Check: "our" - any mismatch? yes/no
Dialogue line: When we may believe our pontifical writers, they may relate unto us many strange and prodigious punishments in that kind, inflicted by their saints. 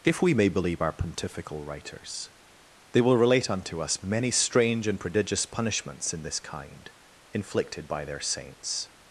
no